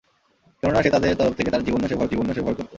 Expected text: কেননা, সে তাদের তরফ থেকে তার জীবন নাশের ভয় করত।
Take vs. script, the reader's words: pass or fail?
fail